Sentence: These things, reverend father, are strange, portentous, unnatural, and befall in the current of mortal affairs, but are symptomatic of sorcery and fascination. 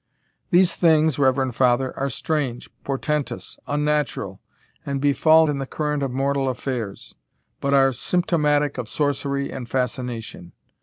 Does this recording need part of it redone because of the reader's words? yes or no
no